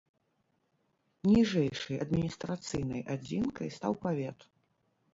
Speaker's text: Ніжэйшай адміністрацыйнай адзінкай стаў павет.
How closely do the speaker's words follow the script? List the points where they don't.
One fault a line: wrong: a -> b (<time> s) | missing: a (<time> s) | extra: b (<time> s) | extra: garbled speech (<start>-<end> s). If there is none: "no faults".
no faults